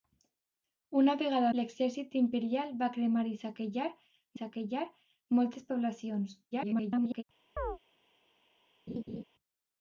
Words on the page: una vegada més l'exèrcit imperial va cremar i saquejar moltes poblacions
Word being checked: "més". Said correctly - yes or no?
no